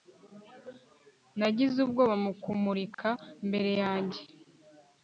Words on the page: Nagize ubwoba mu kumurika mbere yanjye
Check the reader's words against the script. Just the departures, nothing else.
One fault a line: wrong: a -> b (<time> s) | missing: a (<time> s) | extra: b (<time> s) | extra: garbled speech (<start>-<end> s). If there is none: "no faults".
no faults